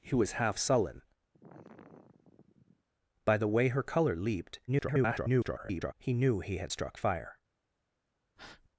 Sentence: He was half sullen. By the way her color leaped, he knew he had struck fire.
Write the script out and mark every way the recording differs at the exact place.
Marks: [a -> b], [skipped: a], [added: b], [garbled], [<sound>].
He was half sullen. [sigh] By the way her color leaped, [garbled] he knew he had struck fire. [breath]